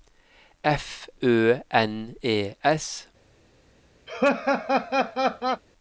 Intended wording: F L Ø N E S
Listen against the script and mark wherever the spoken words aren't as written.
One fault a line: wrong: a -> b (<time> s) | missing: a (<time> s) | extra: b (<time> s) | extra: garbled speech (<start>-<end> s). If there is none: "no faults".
missing: L (1.1 s)